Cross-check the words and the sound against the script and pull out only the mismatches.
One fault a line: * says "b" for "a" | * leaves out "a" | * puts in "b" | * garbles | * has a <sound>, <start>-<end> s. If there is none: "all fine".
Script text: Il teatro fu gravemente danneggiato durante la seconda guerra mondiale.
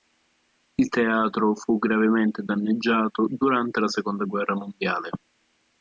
all fine